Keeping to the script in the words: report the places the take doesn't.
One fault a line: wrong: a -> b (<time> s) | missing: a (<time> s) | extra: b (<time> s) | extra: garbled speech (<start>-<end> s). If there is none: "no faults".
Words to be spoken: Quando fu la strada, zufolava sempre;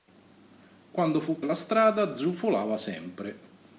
no faults